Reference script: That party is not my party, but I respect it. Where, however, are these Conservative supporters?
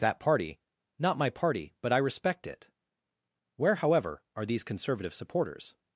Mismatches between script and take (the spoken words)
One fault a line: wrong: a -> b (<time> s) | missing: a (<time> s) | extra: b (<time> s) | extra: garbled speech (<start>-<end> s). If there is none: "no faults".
missing: is (0.6 s)